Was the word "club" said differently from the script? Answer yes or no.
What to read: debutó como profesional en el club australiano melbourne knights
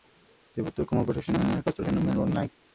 yes